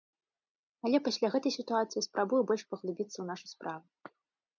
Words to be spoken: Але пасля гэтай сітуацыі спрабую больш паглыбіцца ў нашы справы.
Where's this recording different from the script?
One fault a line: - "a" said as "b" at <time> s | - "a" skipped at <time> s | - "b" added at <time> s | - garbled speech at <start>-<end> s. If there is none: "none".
none